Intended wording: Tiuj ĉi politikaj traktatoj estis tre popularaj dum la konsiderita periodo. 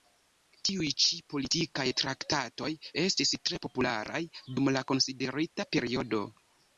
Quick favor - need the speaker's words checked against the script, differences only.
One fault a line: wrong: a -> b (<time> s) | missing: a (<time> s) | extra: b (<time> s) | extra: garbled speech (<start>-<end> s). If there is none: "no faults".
no faults